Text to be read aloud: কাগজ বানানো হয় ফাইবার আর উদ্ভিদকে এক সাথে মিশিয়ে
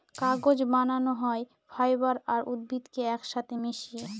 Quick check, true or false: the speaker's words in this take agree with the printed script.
true